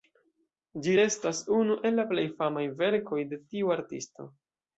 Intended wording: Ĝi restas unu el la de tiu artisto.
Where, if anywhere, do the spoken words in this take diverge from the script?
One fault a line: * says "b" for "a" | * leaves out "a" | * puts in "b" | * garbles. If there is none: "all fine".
* puts in "plej famaj verkoj"